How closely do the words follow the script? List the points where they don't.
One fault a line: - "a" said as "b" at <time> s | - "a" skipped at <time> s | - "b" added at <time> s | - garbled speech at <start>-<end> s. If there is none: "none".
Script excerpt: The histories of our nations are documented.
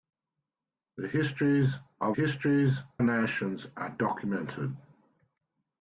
- "our" said as "histories" at 2.1 s